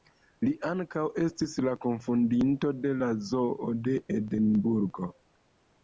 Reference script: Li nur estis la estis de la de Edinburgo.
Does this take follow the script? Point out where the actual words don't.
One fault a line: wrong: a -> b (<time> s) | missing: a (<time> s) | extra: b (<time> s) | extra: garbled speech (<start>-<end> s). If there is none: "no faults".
wrong: nur -> ankaŭ (0.7 s)
wrong: estis -> kunfondinto (1.9 s)
extra: zoo (3.3 s)